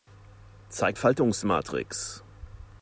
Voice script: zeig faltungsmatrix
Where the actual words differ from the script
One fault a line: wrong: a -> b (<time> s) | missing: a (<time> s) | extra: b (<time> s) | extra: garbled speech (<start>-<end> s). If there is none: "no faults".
no faults